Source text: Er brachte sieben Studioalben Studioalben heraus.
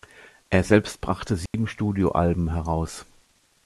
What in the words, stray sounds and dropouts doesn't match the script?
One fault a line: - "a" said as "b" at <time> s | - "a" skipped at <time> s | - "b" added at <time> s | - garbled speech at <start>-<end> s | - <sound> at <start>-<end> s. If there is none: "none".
- "selbst" added at 0.6 s
- dropout at 1.5-1.5 s
- "Studioalben" skipped at 2.5 s